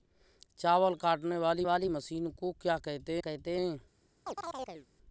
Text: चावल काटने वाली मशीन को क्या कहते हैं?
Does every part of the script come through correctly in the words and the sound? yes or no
no